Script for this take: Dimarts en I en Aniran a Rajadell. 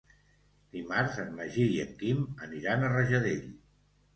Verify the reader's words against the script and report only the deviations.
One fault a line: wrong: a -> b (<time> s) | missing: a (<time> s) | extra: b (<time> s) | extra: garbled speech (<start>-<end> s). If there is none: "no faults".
extra: Magí (1.4 s)
extra: Quim (2.0 s)